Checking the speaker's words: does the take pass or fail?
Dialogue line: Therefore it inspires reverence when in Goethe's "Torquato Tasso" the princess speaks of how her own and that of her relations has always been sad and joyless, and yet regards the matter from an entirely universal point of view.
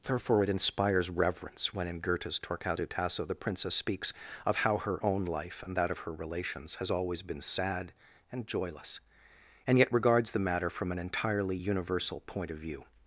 fail